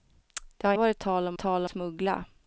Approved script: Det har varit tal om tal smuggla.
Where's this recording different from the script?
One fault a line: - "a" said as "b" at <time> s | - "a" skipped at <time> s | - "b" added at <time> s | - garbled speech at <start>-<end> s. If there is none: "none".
none